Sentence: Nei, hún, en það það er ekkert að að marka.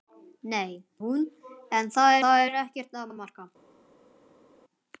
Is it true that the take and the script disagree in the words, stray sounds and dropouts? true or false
false